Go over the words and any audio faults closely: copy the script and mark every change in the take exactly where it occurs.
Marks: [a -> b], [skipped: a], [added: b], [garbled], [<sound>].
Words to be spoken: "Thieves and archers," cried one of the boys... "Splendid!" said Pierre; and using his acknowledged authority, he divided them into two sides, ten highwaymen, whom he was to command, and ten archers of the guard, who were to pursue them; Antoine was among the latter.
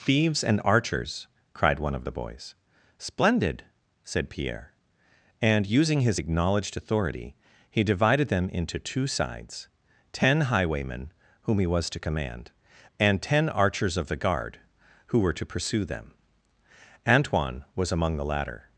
"Thieves and archers," cried one of the boys... "Splendid!" said Pierre; and using his acknowledged authority, he divided them into two sides, ten highwaymen, whom he was to command, and ten archers of the guard, who were to pursue them; Antoine was among the latter.